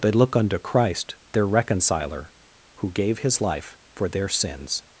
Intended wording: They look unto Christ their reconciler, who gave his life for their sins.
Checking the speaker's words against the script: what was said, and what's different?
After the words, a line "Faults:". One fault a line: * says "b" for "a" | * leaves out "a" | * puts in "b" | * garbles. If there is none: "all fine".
They look unto Christ their reconciler, who gave his life for their sins.
Faults:
all fine